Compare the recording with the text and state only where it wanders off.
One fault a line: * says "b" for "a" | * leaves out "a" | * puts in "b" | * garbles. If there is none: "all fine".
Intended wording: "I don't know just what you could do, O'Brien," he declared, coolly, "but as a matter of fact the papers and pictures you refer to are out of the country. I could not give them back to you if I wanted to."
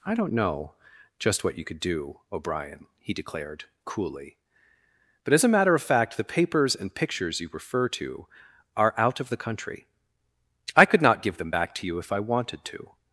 all fine